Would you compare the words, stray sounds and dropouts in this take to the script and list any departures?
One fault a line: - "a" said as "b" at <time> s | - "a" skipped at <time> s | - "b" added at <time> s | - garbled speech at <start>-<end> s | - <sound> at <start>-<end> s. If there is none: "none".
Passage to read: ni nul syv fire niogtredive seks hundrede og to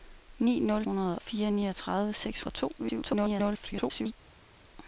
- "syv" said as "hundrede" at 0.8 s
- "hundrede" skipped at 2.4 s
- garbled speech at 2.8-4.1 s